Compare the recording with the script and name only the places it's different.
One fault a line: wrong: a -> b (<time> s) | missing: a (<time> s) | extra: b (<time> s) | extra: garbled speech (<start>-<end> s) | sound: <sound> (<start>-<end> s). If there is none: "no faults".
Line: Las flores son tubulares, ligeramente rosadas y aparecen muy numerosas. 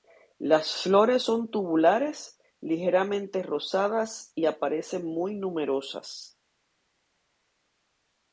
no faults